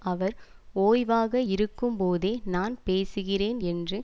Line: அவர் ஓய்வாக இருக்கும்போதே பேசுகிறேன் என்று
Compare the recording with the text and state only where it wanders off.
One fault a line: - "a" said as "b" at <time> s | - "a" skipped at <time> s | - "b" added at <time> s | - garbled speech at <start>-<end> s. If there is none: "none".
- "நான்" added at 2.5 s